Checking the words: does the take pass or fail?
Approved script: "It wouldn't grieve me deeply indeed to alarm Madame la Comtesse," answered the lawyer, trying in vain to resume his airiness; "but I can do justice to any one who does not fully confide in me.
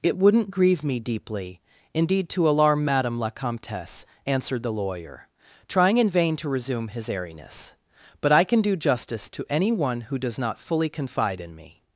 pass